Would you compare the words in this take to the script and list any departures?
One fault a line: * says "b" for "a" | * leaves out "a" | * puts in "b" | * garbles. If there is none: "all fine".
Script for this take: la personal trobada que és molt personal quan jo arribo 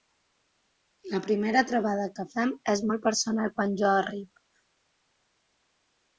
* says "primera" for "personal"
* puts in "fem"